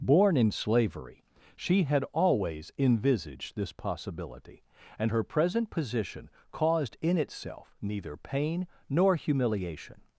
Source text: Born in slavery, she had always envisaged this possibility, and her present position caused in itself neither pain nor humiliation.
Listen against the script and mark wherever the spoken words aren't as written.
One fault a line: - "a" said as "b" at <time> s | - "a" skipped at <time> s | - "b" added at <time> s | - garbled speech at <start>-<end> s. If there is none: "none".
none